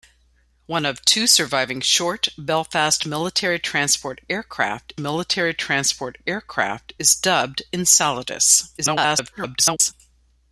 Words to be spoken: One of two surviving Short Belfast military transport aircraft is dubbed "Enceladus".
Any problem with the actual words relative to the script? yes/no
yes